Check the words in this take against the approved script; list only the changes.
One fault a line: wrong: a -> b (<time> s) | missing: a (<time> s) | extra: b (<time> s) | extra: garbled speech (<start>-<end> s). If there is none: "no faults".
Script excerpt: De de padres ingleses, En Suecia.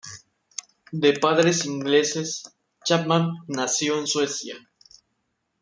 missing: de (1.1 s)
extra: Chapman nació (2.8 s)